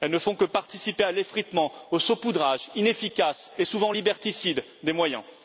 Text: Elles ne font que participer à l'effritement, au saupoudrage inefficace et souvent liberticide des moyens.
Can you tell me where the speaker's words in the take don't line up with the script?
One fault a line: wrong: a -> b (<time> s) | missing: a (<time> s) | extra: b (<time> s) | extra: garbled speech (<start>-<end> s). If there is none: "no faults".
no faults